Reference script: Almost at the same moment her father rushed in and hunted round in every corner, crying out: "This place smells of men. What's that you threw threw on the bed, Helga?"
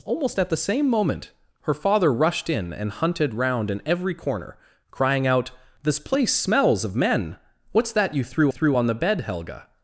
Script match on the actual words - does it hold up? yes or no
yes